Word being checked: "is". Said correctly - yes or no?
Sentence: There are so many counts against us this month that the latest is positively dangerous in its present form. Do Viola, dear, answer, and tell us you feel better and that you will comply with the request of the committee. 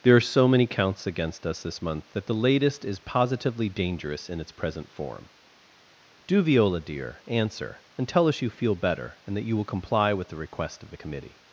yes